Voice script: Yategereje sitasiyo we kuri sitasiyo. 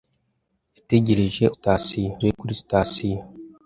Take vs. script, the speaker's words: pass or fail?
pass